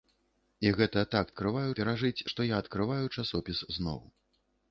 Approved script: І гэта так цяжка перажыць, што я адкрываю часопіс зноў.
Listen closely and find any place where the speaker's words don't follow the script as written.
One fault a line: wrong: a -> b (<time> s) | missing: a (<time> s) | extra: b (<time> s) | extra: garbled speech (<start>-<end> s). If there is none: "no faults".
wrong: цяжка -> адкрываю (1.3 s)